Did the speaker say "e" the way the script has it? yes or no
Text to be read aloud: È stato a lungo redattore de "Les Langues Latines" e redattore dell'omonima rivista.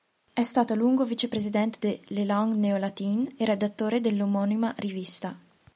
yes